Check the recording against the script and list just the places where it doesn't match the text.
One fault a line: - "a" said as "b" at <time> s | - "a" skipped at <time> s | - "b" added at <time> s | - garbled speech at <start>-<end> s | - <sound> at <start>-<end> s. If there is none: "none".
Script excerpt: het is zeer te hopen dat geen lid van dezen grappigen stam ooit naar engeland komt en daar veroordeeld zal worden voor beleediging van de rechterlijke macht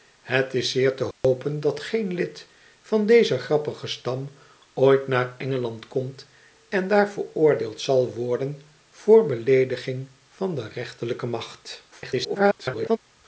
- dropout at 1.1-1.2 s
- garbled speech at 11.9-13.0 s